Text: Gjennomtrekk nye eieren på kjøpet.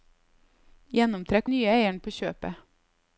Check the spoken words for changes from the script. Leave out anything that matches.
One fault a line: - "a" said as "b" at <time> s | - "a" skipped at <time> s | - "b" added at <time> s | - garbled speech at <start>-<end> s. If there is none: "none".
none